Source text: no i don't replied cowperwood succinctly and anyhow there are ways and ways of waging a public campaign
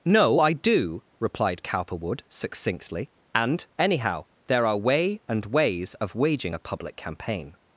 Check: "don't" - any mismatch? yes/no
yes